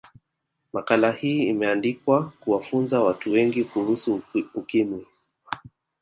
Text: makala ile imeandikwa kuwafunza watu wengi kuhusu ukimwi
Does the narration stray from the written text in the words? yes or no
yes